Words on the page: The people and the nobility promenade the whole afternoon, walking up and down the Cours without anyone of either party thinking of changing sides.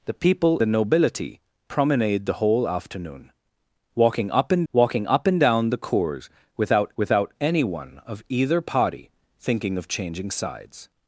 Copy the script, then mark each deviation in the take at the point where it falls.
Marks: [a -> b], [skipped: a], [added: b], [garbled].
The people [skipped: and] the nobility promenade the whole afternoon, walking up and [added: walking up and] down the Cours without [added: without] anyone of either party thinking of changing sides.